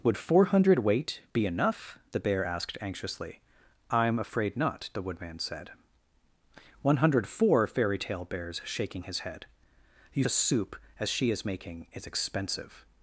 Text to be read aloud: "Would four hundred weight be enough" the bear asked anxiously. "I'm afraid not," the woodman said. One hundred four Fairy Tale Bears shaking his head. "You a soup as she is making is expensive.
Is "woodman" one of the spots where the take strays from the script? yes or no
no